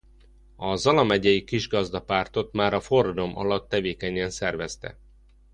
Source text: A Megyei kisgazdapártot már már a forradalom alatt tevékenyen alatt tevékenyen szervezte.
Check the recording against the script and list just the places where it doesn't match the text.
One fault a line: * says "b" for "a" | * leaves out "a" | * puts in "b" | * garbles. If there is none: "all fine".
* puts in "Zala"
* leaves out "már"
* leaves out "alatt tevékenyen"